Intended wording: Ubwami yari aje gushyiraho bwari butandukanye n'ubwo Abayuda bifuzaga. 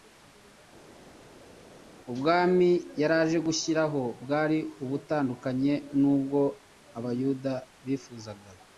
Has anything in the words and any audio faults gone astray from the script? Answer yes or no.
no